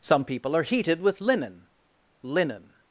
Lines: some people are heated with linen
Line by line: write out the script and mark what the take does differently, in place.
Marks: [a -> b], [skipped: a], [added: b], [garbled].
some people are heated with linen [added: linen]